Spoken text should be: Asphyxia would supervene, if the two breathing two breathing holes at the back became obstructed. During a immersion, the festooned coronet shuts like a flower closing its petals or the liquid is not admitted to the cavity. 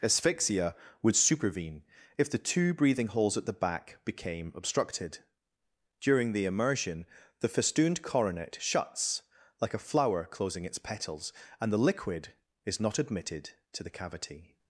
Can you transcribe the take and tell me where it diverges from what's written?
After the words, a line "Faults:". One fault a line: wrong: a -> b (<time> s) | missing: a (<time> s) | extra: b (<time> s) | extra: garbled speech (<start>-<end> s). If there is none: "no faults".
Asphyxia would supervene, if the two breathing holes at the back became obstructed. During the immersion, the festooned coronet shuts like a flower closing its petals and the liquid is not admitted to the cavity.
Faults:
missing: two breathing (3.1 s)
wrong: a -> the (6.3 s)
wrong: or -> and (11.6 s)